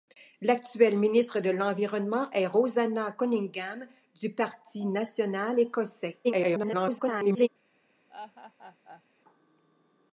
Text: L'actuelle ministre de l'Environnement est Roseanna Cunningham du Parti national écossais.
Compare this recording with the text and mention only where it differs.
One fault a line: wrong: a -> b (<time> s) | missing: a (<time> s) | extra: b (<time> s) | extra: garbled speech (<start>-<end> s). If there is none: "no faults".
extra: garbled speech (6.2-7.5 s)